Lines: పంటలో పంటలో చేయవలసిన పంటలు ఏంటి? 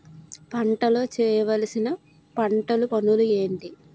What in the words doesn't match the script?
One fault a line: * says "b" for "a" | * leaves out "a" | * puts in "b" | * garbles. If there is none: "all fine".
* leaves out "పంటలో"
* puts in "పనులు"